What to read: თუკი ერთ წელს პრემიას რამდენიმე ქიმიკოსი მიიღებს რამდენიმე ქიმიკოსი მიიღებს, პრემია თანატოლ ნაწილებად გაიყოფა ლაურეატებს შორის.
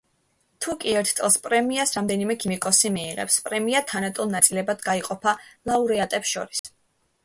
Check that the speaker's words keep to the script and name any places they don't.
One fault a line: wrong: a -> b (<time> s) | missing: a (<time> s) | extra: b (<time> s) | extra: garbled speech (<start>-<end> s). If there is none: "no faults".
missing: რამდენიმე ქიმიკოსი მიიღებს (3.4 s)